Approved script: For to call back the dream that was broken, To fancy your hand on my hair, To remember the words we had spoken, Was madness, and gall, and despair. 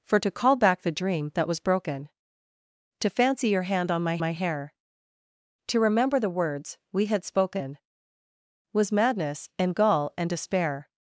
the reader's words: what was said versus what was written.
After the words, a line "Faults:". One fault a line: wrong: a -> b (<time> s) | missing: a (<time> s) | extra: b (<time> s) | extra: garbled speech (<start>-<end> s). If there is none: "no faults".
For to call back the dream that was broken, To fancy your hand on my my hair, To remember the words we had spoken, Was madness, and gall, and despair.
Faults:
extra: my (4.2 s)